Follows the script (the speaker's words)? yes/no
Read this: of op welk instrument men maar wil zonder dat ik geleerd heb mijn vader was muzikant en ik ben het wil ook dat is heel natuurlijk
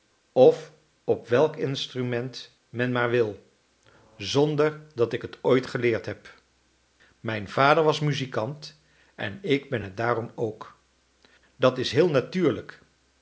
no